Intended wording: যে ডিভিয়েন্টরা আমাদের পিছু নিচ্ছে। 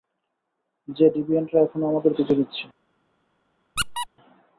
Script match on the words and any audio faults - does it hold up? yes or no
no